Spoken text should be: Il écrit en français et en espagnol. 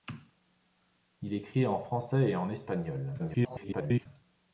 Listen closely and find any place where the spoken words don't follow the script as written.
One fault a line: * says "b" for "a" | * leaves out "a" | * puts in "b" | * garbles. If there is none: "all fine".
* garbles